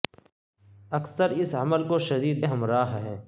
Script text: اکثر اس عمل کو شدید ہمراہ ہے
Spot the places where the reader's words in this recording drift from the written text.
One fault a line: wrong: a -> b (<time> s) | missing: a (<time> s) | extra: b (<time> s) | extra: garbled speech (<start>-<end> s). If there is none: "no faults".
no faults